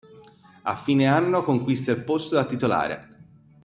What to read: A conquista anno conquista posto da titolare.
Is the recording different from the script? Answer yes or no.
yes